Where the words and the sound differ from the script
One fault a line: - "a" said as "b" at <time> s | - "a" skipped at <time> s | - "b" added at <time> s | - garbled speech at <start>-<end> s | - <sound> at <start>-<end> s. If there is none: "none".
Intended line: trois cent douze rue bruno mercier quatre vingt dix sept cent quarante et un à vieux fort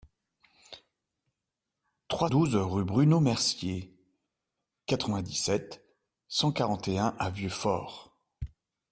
- "cent" skipped at 2.3 s